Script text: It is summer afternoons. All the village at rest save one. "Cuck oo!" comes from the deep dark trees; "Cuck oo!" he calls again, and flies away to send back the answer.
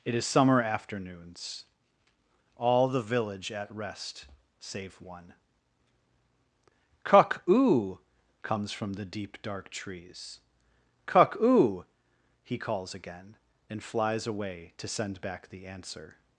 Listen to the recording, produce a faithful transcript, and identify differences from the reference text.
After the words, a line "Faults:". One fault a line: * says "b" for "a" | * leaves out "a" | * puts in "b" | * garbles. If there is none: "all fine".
It is summer afternoons. All the village at rest save one. "Cuck oo!" comes from the deep dark trees; "Cuck oo!" he calls again, and flies away to send back the answer.
Faults:
all fine